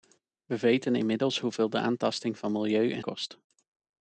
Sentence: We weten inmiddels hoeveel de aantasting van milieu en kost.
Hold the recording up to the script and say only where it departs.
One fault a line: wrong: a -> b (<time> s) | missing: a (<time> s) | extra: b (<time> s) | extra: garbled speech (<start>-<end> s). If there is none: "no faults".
no faults